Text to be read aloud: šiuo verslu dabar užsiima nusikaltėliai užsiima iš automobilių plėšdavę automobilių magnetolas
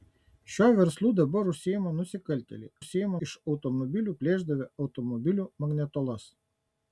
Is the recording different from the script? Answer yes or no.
no